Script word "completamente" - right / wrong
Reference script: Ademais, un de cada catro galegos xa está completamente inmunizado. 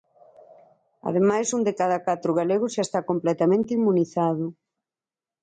right